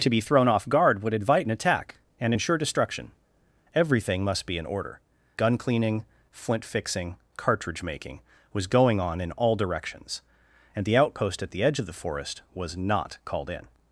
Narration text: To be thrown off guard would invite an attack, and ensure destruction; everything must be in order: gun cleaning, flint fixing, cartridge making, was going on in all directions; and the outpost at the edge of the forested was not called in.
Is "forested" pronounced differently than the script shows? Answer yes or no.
yes